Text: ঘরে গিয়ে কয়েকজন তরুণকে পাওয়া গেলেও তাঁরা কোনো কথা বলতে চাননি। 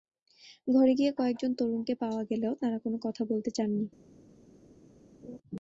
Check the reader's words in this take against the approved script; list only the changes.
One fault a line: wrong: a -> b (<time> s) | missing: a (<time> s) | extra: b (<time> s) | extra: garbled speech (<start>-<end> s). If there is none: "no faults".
no faults